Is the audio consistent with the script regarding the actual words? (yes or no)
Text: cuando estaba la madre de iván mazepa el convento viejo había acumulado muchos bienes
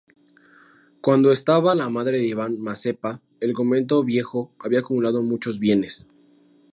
yes